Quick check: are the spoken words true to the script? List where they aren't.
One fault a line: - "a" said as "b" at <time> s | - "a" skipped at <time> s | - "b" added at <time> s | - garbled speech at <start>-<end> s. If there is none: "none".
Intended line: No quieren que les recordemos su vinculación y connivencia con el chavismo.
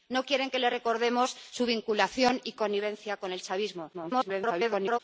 - garbled speech at 3.9-5.0 s